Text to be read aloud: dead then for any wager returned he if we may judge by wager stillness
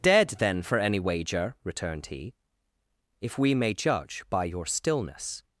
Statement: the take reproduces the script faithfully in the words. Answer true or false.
false